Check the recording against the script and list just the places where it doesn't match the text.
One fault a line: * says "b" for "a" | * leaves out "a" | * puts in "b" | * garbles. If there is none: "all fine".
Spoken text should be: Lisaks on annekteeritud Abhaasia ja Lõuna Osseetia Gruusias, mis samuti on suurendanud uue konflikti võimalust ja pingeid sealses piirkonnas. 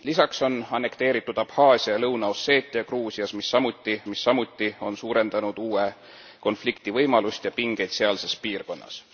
* puts in "mis samuti"